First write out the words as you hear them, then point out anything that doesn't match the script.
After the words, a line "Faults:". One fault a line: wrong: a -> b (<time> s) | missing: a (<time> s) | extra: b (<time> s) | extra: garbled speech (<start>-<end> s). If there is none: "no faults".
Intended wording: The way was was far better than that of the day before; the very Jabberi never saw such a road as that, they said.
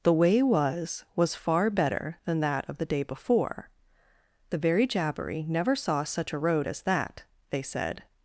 The way was was far better than that of the day before; the very Jabberi never saw such a road as that, they said.
Faults:
no faults